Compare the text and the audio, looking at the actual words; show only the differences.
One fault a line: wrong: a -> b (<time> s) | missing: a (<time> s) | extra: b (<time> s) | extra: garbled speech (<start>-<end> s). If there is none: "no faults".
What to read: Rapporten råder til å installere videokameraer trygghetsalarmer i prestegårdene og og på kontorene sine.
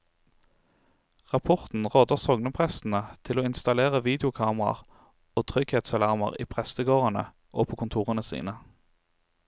extra: sogneprestene (2.2 s)
extra: og (5.4 s)
missing: og (7.7 s)